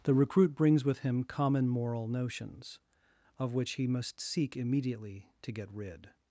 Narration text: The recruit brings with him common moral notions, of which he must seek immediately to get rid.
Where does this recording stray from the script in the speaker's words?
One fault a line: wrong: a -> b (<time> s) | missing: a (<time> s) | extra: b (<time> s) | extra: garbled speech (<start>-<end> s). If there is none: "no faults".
no faults